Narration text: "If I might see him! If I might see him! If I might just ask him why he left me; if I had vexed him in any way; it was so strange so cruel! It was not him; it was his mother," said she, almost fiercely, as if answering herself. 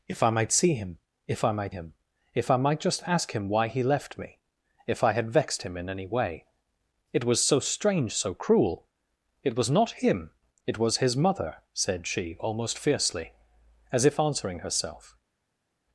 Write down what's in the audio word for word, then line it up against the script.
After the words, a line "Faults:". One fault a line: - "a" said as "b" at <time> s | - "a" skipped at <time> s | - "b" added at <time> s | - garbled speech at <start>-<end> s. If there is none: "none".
"If I might see him! If I might him! If I might just ask him why he left me; if I had vexed him in any way; it was so strange so cruel! It was not him; it was his mother," said she, almost fiercely, as if answering herself.
Faults:
- "see" skipped at 1.8 s